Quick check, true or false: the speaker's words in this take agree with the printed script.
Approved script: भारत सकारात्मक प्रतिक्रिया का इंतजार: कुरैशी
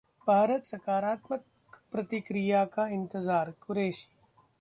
true